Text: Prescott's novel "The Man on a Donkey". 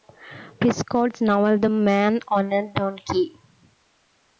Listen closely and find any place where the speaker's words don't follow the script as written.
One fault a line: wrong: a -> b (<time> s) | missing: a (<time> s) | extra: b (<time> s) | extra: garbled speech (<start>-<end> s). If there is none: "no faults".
no faults